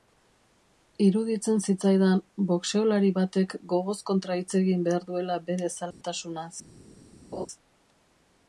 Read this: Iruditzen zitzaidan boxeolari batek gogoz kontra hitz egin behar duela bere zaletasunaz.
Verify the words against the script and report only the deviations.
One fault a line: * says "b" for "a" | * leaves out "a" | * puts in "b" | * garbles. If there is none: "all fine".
all fine